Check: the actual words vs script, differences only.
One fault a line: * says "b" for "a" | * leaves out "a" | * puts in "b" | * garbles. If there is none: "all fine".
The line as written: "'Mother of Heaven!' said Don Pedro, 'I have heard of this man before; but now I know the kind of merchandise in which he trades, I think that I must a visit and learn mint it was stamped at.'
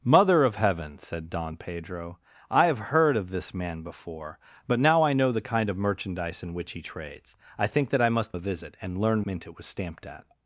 all fine